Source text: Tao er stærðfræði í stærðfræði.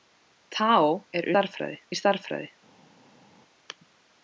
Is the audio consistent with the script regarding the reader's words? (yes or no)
yes